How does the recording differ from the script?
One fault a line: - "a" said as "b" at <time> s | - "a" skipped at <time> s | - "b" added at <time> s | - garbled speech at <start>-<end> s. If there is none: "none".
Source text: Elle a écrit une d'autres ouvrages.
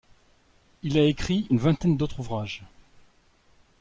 - "Elle" said as "Il" at 0.8 s
- "vingtaine" added at 1.6 s